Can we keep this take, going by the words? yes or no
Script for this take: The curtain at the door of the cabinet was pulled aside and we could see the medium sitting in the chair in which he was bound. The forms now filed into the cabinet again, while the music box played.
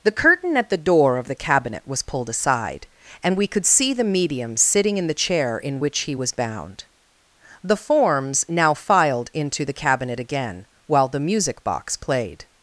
yes